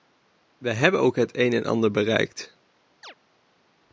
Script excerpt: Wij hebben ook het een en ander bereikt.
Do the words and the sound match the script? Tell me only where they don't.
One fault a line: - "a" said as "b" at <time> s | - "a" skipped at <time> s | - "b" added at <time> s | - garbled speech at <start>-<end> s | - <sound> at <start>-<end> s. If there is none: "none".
- chirp at 3.0-3.1 s